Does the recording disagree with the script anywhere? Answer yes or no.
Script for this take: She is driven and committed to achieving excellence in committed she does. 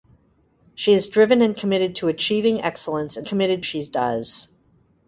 no